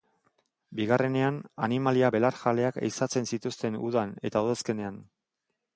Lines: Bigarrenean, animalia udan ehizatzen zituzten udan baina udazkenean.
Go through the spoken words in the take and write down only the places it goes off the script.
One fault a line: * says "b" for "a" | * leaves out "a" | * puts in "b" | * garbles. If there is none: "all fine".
* says "belarjaleak" for "udan"
* says "eta" for "baina"